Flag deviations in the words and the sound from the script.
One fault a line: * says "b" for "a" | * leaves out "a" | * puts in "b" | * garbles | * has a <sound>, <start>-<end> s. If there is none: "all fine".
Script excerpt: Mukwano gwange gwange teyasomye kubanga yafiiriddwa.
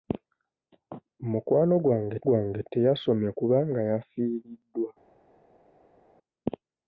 all fine